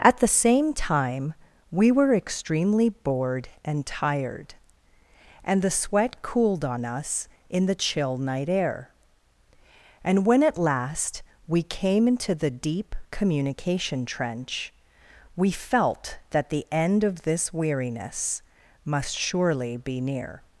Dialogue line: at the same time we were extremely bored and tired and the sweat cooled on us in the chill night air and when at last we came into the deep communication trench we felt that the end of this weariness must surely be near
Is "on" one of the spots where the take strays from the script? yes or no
no